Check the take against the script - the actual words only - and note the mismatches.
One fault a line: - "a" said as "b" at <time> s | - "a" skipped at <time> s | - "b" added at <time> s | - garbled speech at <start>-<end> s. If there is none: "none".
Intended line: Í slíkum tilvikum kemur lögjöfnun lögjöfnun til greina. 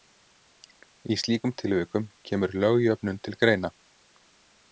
- "lögjöfnun" skipped at 3.2 s